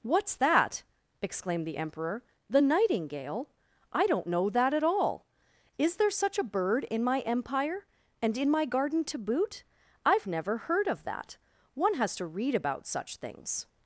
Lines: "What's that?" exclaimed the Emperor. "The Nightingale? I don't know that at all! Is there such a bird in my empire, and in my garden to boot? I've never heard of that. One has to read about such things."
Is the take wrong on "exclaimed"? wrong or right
right